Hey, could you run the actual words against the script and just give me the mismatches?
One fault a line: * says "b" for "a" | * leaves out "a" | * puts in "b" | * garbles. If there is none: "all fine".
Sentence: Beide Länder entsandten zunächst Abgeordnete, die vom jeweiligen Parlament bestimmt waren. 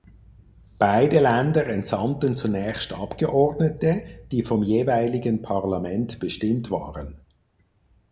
all fine